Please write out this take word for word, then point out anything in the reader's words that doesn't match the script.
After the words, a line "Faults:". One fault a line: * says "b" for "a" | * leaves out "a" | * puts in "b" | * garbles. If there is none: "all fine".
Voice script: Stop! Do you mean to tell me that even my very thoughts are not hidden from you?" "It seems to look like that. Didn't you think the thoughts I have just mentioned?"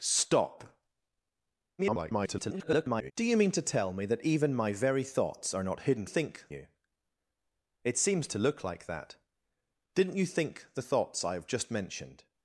Stop! [garbled] Do you mean to tell me that even my very thoughts are not hidden think you?" "It seems to look like that. Didn't you think the thoughts I have just mentioned?"
Faults:
* garbles
* says "think" for "from"